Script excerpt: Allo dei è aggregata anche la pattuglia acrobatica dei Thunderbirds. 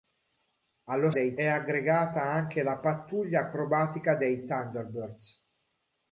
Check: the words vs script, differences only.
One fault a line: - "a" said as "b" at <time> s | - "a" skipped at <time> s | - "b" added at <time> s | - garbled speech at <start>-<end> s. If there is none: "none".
none